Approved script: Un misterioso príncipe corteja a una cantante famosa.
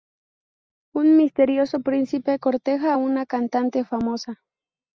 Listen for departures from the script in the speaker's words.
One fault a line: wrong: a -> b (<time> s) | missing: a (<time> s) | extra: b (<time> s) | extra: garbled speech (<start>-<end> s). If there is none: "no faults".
no faults